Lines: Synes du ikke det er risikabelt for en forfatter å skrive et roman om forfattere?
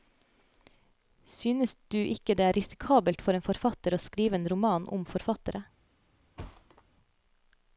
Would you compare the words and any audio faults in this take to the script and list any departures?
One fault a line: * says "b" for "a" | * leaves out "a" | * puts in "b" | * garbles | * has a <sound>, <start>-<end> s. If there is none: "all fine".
* says "en" for "et"
* has a thud, 6.4-6.8 s